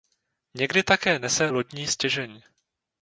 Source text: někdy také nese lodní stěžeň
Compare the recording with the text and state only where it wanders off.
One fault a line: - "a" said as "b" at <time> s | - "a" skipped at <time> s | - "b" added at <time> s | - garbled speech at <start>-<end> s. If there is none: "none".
none